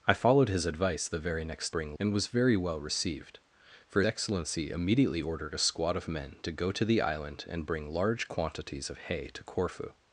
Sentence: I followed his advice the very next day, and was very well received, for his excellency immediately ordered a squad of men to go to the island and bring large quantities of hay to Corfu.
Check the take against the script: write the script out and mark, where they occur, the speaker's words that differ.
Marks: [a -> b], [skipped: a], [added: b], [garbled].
I followed his advice the very next [day, -> bring] and was very well received, for [skipped: his] excellency immediately ordered a squad of men to go to the island and bring large quantities of hay to Corfu.